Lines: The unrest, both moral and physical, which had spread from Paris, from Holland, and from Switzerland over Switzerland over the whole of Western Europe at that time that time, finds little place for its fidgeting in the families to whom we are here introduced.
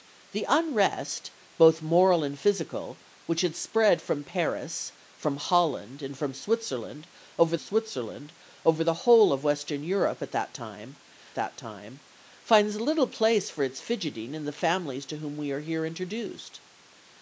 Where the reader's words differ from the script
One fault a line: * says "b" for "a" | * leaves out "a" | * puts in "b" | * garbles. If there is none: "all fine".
all fine